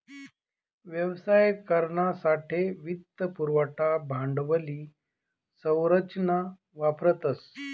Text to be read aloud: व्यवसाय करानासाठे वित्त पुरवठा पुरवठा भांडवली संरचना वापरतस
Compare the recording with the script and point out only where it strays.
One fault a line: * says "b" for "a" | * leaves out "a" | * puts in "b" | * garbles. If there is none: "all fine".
* leaves out "पुरवठा"